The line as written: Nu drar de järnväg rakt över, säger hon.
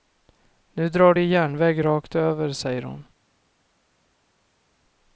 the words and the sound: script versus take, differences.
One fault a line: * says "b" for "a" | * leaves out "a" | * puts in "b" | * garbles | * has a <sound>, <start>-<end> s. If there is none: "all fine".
all fine